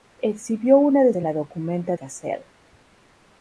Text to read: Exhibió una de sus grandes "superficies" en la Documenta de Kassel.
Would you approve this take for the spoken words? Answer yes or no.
no